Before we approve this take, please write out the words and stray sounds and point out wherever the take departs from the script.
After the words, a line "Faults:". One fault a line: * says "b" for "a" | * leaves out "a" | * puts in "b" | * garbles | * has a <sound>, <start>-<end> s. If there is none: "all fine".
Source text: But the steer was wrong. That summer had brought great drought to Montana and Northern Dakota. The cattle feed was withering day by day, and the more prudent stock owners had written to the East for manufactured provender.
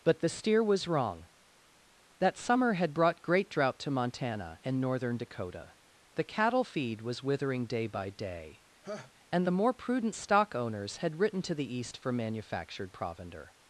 But the steer was wrong. That summer had brought great drought to Montana and Northern Dakota. The cattle feed was withering day by day, and the more prudent stock owners had written to the East for manufactured provender.
Faults:
* has a laugh, 8.8-9.1 s